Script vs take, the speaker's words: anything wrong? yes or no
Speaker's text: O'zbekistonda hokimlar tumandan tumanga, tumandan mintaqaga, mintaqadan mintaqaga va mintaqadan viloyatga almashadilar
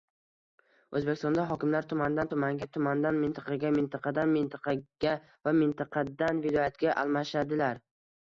no